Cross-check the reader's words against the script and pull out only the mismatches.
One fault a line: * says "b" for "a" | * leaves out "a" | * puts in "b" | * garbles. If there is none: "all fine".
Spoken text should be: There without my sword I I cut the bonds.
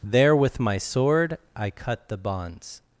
* says "with" for "without"
* leaves out "I"